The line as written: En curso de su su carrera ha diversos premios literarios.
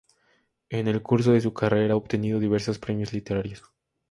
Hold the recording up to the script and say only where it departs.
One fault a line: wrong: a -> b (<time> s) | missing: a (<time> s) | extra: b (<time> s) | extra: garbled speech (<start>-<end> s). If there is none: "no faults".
extra: el (0.9 s)
missing: su (1.5 s)
extra: obtenido (2.0 s)